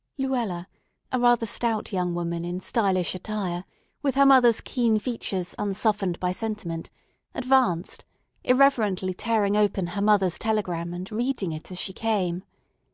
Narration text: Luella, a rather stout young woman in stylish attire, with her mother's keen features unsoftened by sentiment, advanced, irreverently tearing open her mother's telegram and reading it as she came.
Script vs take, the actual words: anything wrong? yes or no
no